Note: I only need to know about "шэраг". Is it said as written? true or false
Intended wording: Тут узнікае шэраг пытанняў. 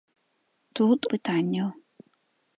false